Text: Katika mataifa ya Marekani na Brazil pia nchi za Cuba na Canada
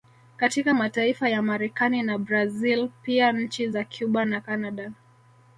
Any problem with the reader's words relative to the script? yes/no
no